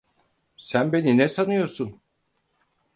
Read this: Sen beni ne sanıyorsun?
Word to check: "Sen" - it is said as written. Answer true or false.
true